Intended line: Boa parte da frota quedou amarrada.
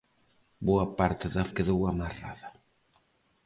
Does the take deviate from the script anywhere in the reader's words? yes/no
yes